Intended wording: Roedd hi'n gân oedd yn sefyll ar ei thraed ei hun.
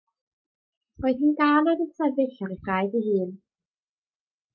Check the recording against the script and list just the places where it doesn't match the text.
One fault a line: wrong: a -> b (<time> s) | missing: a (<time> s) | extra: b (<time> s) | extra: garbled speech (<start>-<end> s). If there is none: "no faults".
no faults